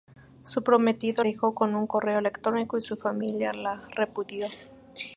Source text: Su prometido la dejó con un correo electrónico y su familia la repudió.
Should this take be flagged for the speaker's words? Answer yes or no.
yes